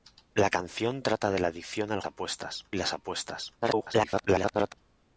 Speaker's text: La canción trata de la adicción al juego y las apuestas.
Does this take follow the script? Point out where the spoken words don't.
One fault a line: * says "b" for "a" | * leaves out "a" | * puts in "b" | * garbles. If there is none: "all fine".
* says "apuestas" for "juego"
* garbles